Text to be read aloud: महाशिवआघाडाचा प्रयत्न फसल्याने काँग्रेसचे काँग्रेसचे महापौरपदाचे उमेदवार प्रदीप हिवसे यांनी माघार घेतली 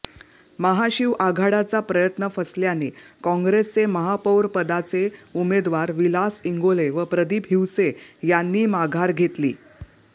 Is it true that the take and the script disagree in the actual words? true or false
true